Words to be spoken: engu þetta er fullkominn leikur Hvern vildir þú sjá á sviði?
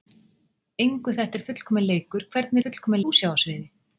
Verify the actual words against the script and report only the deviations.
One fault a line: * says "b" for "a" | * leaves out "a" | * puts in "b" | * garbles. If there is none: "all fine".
* says "fullkominn" for "vildir"